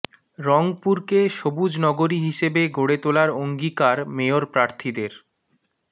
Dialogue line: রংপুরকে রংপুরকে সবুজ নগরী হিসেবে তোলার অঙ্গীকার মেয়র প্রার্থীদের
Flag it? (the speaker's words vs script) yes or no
yes